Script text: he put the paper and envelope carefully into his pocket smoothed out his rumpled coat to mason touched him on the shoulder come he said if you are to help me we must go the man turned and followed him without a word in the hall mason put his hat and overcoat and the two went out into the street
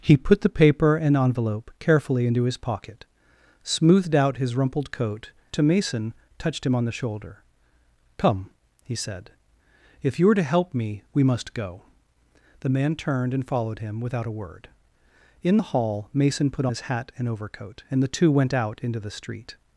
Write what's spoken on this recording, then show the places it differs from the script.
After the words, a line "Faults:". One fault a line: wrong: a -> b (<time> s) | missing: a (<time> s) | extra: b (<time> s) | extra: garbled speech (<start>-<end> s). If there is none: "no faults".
he put the paper and envelope carefully into his pocket smoothed out his rumpled coat to mason touched him on the shoulder come he said if you are to help me we must go the man turned and followed him without a word in the hall mason put his hat and overcoat and the two went out into the street
Faults:
no faults